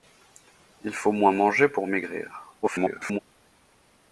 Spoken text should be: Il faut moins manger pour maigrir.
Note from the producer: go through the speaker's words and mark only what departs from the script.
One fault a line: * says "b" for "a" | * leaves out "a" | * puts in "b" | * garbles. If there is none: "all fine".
* garbles